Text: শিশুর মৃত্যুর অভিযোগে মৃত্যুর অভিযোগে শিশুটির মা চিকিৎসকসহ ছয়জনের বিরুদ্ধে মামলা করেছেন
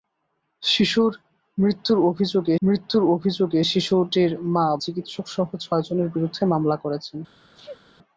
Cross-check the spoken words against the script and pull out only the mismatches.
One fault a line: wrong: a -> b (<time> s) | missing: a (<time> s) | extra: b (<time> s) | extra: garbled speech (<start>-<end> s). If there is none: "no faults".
no faults